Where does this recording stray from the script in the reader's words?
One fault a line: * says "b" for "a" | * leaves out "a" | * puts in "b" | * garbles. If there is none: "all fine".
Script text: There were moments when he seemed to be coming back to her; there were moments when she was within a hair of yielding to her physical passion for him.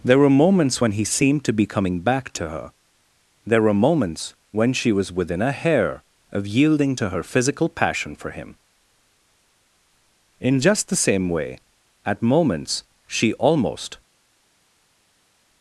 * puts in "In just the same way at moments she almost"